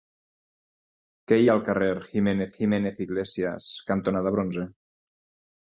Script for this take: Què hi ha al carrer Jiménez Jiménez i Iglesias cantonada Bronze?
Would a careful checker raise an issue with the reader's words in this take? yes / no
no